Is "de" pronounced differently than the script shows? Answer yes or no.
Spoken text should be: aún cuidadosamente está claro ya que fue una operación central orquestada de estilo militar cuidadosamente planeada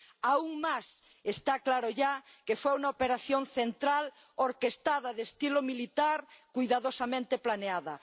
no